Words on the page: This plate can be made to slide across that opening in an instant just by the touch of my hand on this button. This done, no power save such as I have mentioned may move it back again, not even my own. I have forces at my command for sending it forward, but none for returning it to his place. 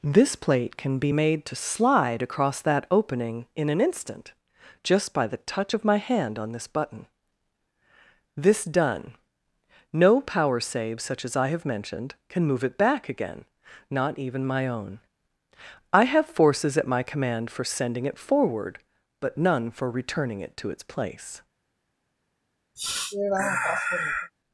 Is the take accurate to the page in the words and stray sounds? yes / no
no